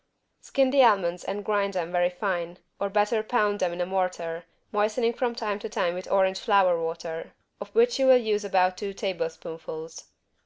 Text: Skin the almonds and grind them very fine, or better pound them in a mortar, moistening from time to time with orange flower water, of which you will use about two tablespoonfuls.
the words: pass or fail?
pass